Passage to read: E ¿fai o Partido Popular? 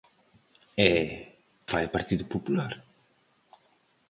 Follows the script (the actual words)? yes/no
yes